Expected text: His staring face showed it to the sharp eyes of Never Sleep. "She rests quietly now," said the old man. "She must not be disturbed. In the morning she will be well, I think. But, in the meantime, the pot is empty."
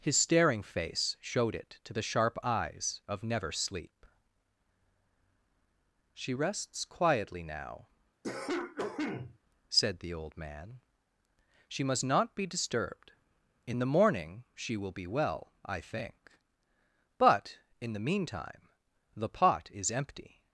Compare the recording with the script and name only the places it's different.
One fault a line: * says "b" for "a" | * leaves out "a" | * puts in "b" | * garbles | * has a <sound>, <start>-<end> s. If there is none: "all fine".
* has a cough, 8.2-9.4 s